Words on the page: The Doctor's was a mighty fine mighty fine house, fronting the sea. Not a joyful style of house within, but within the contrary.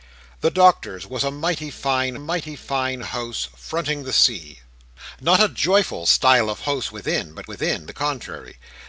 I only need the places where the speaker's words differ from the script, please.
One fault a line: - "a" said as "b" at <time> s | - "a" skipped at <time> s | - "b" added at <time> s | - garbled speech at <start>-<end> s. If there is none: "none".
none